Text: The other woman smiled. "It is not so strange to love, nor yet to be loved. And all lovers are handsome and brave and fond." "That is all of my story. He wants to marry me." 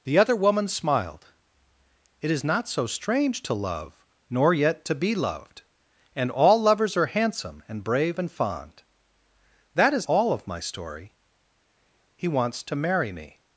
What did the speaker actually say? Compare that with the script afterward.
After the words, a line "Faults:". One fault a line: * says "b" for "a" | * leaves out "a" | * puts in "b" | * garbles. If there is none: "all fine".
The other woman smiled. "It is not so strange to love, nor yet to be loved. And all lovers are handsome and brave and fond." "That is all of my story. He wants to marry me."
Faults:
all fine